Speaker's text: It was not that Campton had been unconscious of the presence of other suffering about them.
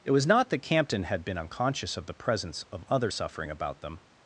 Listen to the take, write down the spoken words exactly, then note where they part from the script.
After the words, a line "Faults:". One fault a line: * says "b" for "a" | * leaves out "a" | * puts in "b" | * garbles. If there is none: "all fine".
It was not that Campton had been unconscious of the presence of other suffering about them.
Faults:
all fine